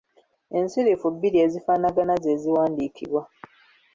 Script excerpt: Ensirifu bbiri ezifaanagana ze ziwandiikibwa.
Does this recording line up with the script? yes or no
yes